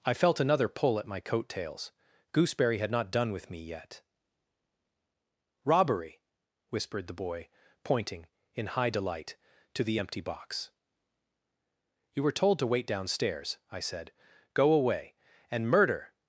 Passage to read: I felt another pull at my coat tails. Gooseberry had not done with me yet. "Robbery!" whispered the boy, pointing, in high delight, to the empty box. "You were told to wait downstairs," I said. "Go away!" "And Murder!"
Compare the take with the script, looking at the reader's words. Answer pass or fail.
pass